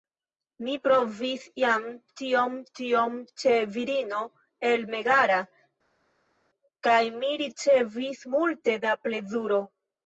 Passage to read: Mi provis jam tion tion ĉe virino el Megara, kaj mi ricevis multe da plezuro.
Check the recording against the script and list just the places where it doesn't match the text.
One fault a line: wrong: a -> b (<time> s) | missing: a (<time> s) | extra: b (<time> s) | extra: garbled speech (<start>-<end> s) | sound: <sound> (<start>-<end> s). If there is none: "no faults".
no faults